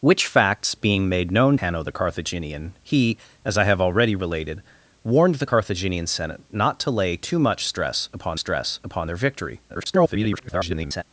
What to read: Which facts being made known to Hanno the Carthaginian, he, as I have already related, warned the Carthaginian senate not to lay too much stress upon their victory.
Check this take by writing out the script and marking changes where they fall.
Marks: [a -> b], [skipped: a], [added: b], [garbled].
Which facts being made known [skipped: to] Hanno the Carthaginian, he, as I have already related, warned the Carthaginian senate not to lay too much stress upon [added: stress upon] their victory. [garbled]